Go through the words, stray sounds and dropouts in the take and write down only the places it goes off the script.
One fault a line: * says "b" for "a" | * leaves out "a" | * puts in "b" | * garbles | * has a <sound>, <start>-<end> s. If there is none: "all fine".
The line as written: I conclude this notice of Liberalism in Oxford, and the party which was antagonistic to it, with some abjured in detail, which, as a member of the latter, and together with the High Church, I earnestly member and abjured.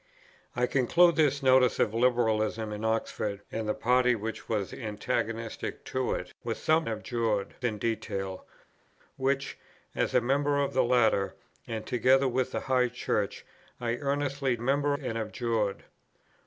all fine